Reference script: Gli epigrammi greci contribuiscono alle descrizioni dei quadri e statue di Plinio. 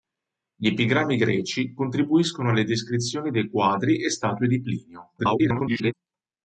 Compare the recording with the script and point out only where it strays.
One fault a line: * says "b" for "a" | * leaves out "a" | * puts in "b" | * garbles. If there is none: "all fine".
* garbles